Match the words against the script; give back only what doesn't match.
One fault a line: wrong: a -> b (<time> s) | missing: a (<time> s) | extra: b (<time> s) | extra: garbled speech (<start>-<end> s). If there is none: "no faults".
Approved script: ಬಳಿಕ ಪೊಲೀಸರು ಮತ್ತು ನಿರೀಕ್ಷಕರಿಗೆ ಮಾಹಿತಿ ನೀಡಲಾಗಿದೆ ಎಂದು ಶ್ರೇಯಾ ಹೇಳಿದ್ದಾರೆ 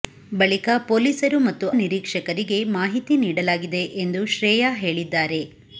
no faults